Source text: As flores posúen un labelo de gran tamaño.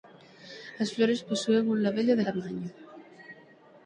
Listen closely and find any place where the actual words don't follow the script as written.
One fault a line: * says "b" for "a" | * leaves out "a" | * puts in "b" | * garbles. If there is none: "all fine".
* leaves out "gran"